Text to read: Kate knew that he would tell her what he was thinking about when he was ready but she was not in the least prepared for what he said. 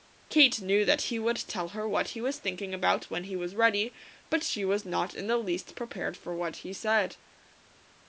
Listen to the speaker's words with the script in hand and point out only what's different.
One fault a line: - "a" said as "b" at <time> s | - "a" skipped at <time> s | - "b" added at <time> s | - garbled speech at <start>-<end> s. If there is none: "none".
none